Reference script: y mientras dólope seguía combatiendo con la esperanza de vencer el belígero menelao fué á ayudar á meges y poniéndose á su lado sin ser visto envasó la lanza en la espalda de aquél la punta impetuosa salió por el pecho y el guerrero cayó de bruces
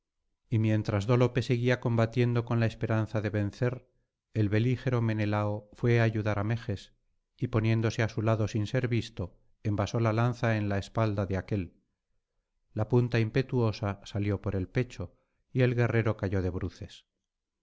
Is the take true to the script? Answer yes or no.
yes